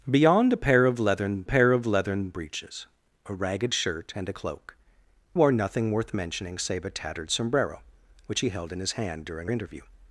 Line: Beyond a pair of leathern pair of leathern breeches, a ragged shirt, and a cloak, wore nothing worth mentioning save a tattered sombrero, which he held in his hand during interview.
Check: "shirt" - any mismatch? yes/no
no